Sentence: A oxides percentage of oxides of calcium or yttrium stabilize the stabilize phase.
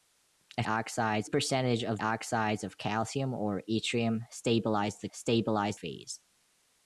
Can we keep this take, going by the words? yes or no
yes